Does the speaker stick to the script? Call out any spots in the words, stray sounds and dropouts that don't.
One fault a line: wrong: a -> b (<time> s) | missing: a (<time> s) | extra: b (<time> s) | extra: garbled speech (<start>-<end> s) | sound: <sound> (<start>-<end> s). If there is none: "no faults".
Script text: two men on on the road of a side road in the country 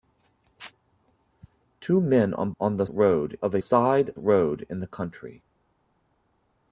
no faults